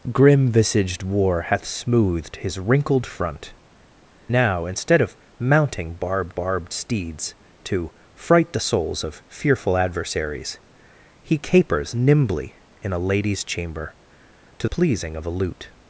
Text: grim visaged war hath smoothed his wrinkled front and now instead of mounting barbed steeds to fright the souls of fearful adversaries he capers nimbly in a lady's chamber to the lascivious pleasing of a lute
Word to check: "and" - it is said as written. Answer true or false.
false